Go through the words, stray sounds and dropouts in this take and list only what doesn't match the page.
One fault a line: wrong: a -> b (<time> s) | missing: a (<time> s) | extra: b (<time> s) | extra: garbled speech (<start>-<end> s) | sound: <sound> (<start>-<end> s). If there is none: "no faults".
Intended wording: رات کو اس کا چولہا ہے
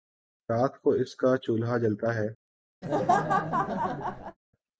extra: جلتا (1.8 s)
sound: laugh (2.8-4.4 s)